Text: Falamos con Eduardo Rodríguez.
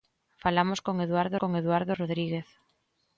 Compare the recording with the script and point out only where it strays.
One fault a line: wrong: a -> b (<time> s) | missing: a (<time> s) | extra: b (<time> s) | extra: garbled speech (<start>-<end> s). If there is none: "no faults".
extra: con Eduardo (1.4 s)